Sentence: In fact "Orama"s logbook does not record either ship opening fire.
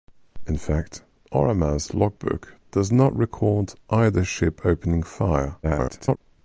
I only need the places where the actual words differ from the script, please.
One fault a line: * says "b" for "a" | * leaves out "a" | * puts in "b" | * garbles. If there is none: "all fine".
* garbles